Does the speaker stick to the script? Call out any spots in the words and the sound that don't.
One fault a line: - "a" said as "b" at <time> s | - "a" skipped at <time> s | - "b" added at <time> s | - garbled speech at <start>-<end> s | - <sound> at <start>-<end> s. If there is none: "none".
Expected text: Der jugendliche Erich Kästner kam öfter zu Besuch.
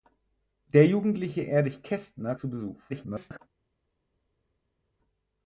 - "kam öfter" skipped at 2.3 s
- garbled speech at 2.9-3.4 s